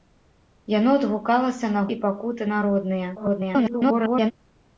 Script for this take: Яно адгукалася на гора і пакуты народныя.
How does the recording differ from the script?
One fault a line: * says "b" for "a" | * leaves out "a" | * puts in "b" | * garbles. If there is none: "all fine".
* leaves out "гора"
* garbles